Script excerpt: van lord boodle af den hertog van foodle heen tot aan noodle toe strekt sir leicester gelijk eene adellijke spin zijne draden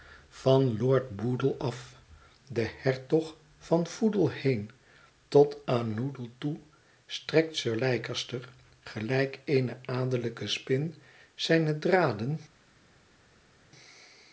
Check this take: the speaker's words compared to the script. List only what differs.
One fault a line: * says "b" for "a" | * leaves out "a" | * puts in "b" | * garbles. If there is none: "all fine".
all fine